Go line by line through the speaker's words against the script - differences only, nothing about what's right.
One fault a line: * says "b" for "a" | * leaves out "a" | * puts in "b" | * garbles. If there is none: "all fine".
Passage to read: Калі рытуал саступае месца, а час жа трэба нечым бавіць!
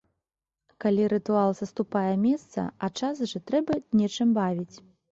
all fine